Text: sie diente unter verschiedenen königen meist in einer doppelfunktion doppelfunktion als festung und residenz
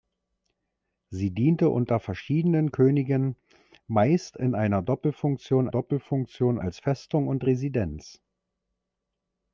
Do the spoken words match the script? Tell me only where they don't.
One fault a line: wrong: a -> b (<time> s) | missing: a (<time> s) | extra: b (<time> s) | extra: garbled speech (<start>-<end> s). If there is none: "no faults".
no faults